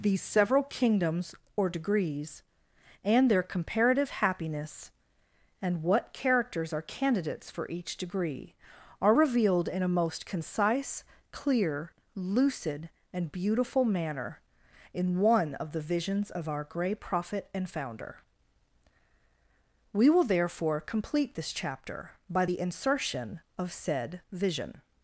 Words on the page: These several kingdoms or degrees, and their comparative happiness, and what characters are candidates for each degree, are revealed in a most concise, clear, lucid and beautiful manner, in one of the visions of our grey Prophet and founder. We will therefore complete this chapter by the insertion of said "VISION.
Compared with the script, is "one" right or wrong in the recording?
right